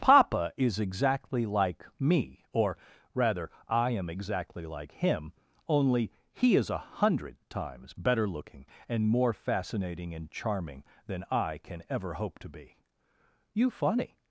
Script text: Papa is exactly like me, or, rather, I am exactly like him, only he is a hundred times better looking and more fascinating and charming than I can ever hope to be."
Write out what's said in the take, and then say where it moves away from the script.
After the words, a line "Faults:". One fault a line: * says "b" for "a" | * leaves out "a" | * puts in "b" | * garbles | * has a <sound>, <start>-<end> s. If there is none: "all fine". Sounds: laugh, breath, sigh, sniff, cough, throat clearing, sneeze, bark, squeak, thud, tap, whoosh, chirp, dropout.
Papa is exactly like me, or, rather, I am exactly like him, only he is a hundred times better looking and more fascinating and charming than I can ever hope to be." "You funny
Faults:
* puts in "You funny"